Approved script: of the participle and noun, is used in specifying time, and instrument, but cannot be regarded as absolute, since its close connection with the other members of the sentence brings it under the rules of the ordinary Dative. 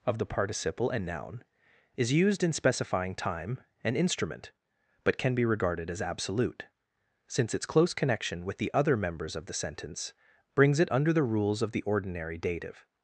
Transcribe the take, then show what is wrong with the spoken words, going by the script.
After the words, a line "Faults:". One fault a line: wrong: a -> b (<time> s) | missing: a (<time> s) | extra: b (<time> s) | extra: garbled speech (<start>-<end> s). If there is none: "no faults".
of the participle and noun, is used in specifying time, and instrument, but can be regarded as absolute, since its close connection with the other members of the sentence brings it under the rules of the ordinary Dative.
Faults:
wrong: cannot -> can (5.2 s)